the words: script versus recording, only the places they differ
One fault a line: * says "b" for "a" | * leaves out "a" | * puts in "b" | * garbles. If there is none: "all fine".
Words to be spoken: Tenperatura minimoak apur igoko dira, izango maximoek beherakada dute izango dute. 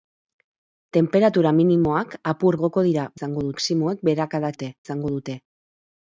all fine